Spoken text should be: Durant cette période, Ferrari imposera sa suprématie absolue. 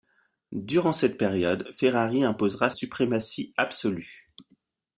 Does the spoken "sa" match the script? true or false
false